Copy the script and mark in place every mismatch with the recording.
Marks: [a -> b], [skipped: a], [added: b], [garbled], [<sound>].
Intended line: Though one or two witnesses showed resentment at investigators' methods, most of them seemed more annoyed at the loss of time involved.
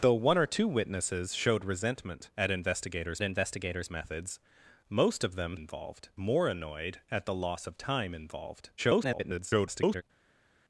Though one or two witnesses showed resentment at investigators' [added: investigators] methods, most of them [seemed -> involved] more annoyed at the loss of time involved. [garbled]